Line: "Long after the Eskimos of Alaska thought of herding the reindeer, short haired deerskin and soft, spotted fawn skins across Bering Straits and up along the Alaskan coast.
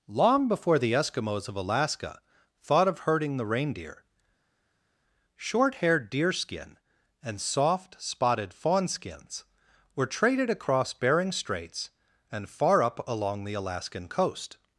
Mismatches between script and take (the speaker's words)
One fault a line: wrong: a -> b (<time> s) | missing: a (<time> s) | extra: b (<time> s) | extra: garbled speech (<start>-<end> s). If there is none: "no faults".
wrong: after -> before (0.5 s)
extra: were traded (9.9 s)
extra: far (12.5 s)